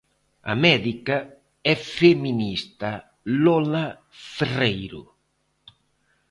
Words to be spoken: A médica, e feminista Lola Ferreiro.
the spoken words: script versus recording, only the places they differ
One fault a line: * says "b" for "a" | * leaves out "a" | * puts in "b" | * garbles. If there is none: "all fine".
all fine